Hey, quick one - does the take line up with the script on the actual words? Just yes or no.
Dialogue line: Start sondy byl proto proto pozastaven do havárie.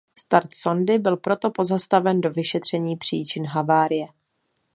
no